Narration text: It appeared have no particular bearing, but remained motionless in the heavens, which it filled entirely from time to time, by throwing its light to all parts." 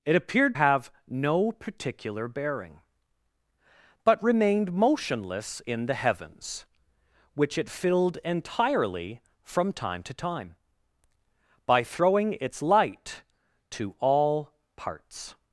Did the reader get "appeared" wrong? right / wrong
right